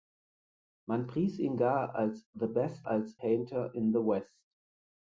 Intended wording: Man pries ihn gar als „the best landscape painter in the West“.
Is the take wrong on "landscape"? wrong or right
wrong